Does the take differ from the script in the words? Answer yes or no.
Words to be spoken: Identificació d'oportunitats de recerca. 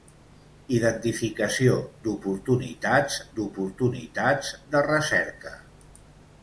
yes